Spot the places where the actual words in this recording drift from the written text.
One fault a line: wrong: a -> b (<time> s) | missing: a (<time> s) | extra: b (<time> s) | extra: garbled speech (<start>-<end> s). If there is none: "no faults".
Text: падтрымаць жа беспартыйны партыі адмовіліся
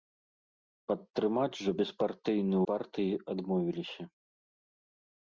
no faults